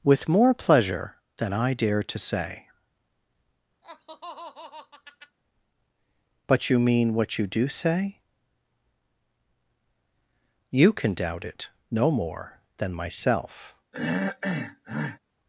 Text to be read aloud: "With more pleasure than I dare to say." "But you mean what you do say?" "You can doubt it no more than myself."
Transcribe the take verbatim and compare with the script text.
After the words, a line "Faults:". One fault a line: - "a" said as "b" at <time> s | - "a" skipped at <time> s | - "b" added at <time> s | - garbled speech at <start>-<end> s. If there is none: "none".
"With more pleasure than I dare to say." "But you mean what you do say?" "You can doubt it no more than myself."
Faults:
none